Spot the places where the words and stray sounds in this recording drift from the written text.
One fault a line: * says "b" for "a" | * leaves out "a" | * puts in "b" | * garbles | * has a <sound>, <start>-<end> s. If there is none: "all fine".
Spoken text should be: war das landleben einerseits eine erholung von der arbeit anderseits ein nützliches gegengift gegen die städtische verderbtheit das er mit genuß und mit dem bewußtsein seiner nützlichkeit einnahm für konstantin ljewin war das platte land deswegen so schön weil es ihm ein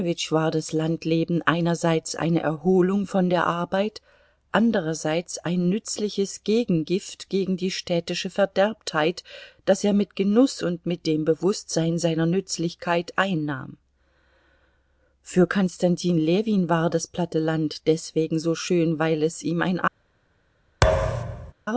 * has a thud, 20.8-21.5 s